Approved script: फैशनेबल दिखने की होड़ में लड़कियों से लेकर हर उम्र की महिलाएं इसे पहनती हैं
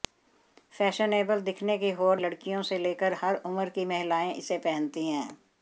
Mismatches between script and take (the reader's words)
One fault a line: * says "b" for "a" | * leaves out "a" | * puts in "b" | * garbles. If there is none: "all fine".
* leaves out "में"